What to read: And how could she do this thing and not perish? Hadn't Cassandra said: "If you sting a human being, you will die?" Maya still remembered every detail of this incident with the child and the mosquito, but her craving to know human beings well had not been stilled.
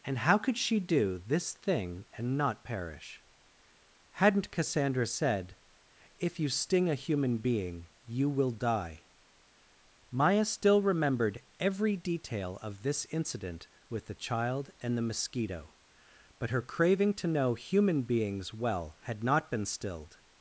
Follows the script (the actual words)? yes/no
yes